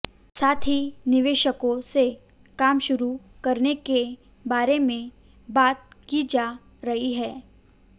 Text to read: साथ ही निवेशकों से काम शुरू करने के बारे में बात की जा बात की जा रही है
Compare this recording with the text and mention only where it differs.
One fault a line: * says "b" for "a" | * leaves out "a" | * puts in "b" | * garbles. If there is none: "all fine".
* leaves out "बात की जा"